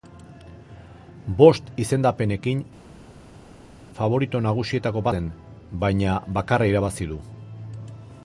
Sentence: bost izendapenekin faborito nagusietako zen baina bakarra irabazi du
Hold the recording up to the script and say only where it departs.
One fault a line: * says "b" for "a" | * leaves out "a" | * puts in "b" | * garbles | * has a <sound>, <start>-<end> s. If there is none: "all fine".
all fine